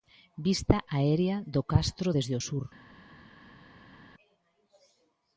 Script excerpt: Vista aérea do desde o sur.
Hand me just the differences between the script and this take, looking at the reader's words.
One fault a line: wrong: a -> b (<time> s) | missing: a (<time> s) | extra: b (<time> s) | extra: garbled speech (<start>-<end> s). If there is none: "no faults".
extra: castro (1.7 s)